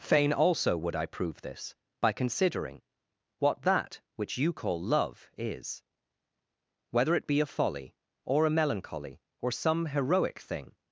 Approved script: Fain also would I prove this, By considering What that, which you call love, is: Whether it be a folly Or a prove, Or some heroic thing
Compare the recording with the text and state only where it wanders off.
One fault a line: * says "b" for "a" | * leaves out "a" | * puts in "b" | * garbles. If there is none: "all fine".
* says "melancholy" for "prove"